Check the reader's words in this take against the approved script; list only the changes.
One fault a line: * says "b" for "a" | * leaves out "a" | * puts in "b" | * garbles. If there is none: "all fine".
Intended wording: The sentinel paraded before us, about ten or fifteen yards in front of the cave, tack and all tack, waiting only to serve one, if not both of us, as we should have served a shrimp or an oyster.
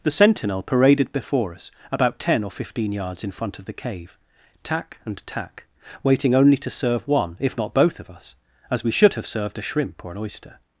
* leaves out "all"